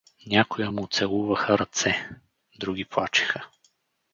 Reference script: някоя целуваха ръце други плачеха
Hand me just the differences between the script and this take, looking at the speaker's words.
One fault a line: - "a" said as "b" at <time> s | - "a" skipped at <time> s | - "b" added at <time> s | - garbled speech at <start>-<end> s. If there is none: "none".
- "му" added at 0.7 s